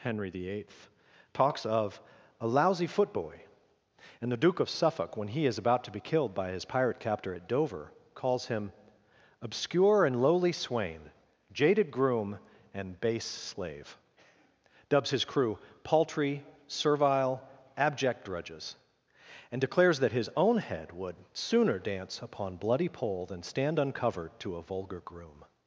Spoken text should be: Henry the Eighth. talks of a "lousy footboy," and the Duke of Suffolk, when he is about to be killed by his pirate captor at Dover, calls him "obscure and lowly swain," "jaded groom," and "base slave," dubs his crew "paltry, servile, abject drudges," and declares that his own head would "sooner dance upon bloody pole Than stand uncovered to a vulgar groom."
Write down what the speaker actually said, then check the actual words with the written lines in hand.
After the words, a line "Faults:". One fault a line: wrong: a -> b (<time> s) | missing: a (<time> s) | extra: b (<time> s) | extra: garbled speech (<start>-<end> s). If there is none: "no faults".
Henry the Eighth. talks of a "lousy footboy," and the Duke of Suffolk, when he is about to be killed by his pirate captor at Dover, calls him "obscure and lowly swain," "jaded groom," and "base slave," dubs his crew "paltry, servile, abject drudges," and declares that his own head would "sooner dance upon bloody pole Than stand uncovered to a vulgar groom."
Faults:
no faults